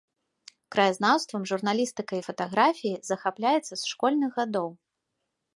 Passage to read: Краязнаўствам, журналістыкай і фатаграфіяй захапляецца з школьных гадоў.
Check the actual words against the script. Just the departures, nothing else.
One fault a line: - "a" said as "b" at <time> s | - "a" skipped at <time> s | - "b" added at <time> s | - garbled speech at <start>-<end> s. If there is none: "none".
none